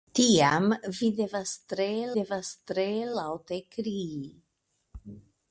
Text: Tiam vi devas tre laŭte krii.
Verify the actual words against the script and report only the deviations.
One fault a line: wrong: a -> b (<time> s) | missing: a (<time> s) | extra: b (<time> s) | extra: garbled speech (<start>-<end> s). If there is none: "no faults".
extra: devas tre (2.2 s)